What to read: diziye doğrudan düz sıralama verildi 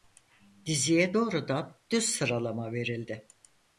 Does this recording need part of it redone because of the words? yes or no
no